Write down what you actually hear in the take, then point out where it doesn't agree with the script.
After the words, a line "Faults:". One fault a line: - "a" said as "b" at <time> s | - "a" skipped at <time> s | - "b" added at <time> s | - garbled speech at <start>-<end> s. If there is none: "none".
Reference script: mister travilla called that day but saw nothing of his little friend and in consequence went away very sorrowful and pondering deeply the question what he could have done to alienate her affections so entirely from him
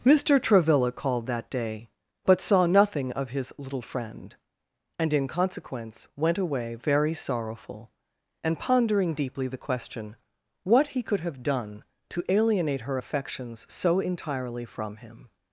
mister travilla called that day but saw nothing of his little friend and in consequence went away very sorrowful and pondering deeply the question what he could have done to alienate her affections so entirely from him
Faults:
none